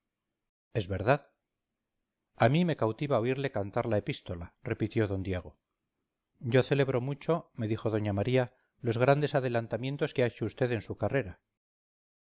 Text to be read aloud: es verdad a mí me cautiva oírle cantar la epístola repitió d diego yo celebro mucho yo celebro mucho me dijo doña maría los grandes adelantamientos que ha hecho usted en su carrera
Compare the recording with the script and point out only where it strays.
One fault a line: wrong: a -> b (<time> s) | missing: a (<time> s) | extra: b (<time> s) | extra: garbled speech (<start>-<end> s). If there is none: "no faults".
missing: yo celebro mucho (7.5 s)